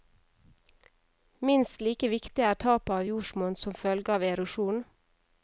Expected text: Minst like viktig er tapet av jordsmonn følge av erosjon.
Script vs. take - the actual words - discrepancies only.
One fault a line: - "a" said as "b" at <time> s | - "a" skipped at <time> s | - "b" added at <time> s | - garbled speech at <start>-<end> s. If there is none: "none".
- "som" added at 3.6 s